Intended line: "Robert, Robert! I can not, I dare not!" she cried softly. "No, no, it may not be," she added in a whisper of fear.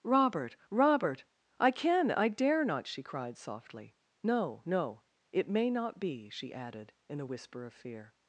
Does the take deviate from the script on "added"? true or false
false